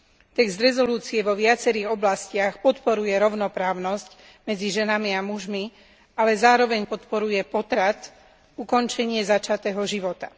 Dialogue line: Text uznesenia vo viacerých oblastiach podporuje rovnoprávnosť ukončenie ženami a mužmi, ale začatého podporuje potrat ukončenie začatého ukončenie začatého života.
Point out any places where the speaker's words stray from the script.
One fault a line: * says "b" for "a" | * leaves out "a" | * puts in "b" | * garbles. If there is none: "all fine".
* says "medzi" for "ukončenie"
* says "zároveň" for "začatého"
* leaves out "ukončenie začatého"